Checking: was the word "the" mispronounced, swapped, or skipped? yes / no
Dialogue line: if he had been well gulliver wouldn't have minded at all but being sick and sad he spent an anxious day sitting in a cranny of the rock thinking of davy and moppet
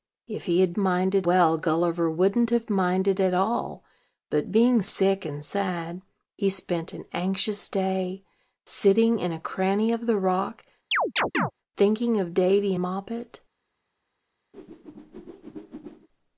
no